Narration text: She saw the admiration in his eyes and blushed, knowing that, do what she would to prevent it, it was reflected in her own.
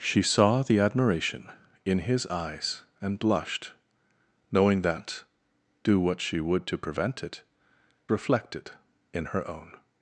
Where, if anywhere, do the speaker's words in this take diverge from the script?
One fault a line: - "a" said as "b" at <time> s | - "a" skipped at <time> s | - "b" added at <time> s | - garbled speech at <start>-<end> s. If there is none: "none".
- "it was" skipped at 7.4 s